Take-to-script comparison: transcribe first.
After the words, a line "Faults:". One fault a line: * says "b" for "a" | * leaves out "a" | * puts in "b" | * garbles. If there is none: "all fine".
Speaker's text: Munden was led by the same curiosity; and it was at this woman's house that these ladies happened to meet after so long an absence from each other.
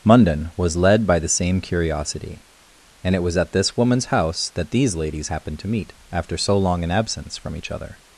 Munden was led by the same curiosity; and it was at this woman's house that these ladies happened to meet after so long an absence from each other.
Faults:
all fine